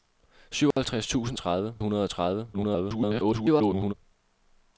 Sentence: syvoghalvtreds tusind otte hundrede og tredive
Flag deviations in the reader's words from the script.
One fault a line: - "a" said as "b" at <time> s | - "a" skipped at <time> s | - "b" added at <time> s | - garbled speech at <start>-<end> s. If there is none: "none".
- "otte" said as "tredive" at 1.4 s
- garbled speech at 2.5-3.9 s